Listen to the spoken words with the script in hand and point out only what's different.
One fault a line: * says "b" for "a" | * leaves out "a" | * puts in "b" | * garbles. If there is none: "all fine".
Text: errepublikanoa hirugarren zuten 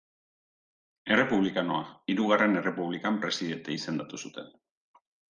* puts in "errepublikan presidente izendatu"